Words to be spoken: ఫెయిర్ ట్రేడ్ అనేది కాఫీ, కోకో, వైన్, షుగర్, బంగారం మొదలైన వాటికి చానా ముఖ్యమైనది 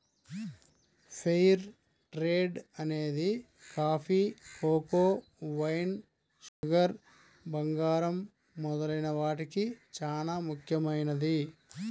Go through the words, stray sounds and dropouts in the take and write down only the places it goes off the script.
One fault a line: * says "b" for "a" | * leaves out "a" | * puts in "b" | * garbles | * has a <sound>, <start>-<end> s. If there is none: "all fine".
* has a dropout, 6.5-6.6 s